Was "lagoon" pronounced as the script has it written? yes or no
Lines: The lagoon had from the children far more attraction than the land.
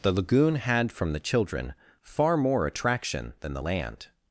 yes